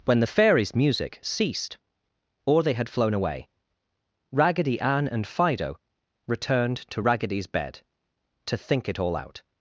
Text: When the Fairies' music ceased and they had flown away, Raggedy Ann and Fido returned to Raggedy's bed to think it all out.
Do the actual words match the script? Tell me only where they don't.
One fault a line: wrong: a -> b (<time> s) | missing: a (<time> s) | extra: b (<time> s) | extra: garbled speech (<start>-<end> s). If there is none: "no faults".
wrong: and -> or (2.5 s)